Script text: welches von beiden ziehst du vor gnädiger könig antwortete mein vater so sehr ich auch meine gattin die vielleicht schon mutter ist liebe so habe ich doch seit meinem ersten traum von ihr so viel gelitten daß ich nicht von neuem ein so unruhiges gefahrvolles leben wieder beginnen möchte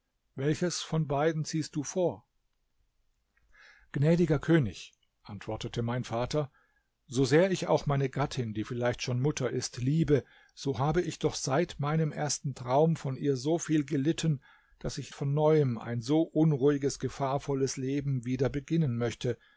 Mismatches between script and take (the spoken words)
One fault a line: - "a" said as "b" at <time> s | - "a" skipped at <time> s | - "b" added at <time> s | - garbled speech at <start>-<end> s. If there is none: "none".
- "nicht" skipped at 15.1 s